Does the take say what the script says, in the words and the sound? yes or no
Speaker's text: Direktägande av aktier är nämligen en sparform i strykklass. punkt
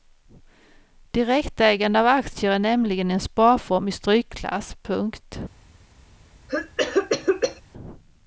no